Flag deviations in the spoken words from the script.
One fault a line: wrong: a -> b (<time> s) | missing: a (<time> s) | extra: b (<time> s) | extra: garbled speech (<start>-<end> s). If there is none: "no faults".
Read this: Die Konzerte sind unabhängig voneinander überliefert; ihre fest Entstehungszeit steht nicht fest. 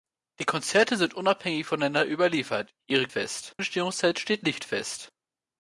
no faults